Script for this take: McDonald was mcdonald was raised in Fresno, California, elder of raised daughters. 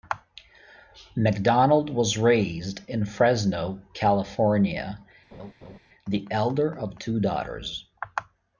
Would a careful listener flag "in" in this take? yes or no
no